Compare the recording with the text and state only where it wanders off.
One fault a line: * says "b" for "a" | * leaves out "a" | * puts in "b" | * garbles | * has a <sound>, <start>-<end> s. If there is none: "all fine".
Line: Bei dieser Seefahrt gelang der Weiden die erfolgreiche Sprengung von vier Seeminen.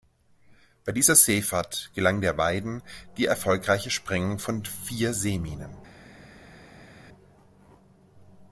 all fine